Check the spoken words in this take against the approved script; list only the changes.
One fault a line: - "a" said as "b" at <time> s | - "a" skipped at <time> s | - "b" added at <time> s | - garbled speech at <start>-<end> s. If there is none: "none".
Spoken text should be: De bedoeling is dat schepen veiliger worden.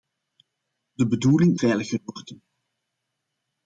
- "is dat schepen" skipped at 1.6 s